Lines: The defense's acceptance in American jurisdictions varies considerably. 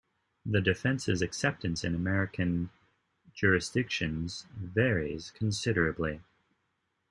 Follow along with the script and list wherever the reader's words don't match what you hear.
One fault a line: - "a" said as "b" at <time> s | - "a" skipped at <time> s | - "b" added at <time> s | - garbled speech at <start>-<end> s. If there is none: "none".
none